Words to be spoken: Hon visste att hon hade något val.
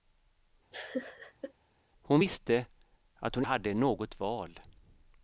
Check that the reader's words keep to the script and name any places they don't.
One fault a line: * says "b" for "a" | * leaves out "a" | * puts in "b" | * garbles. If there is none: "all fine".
all fine